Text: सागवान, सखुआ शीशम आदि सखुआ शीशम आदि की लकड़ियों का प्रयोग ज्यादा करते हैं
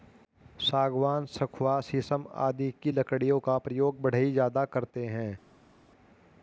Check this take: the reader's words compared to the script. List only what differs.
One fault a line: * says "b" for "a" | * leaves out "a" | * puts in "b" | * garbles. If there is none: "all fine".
* leaves out "सखुआ शीशम आदि"
* puts in "बढ़ई"